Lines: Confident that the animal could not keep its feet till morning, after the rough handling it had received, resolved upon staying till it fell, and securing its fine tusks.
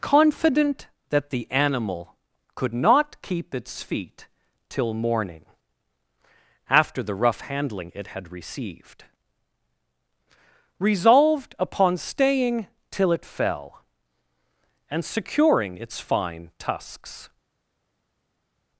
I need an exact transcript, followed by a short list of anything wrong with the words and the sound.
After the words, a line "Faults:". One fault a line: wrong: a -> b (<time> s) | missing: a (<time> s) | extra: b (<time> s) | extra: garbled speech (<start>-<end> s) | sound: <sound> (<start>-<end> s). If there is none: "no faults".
Confident that the animal could not keep its feet till morning, after the rough handling it had received, resolved upon staying till it fell, and securing its fine tusks.
Faults:
no faults